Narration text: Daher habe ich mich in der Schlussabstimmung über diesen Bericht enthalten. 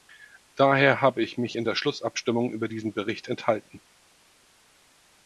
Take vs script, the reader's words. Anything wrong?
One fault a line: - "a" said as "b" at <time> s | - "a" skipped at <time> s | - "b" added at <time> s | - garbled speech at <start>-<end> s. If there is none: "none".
none